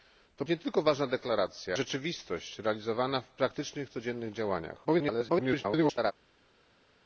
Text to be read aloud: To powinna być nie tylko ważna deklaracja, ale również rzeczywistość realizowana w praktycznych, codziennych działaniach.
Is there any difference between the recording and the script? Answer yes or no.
yes